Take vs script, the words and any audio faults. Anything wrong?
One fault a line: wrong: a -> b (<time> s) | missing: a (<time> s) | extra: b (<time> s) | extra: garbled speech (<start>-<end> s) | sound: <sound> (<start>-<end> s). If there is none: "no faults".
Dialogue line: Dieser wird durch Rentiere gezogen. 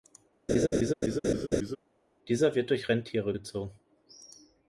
sound: laugh (0.5-1.8 s)